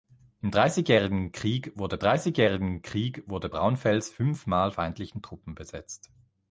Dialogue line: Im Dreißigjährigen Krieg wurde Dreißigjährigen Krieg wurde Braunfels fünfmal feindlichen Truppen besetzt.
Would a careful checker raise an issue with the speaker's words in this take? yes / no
no